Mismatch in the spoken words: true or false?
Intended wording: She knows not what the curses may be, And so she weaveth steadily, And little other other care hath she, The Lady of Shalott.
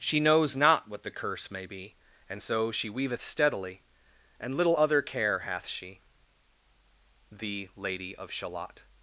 true